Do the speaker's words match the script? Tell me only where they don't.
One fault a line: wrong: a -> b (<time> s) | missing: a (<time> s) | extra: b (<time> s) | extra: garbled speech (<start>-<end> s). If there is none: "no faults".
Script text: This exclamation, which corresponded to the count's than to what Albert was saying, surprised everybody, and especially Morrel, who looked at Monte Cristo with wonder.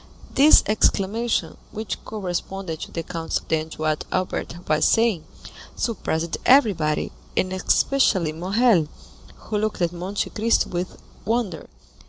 no faults